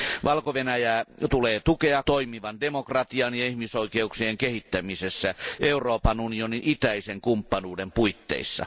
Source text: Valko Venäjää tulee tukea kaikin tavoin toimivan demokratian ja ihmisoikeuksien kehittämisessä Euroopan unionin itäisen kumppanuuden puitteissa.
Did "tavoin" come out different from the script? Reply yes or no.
yes